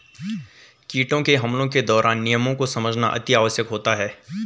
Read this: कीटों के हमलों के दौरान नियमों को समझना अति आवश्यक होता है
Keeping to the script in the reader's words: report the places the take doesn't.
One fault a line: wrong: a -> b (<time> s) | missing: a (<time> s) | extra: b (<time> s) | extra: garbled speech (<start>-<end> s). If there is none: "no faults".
no faults